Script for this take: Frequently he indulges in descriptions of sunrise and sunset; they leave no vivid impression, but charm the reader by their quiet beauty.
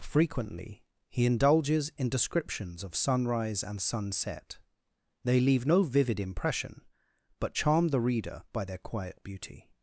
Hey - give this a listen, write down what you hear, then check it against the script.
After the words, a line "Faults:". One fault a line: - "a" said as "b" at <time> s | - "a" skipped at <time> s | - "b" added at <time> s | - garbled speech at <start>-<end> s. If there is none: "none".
Frequently he indulges in descriptions of sunrise and sunset; they leave no vivid impression, but charm the reader by their quiet beauty.
Faults:
none